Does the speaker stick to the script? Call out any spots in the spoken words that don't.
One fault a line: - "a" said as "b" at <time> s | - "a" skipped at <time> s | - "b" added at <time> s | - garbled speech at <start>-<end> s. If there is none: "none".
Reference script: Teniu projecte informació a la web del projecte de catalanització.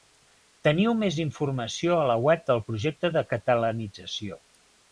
- "projecte" said as "més" at 1.0 s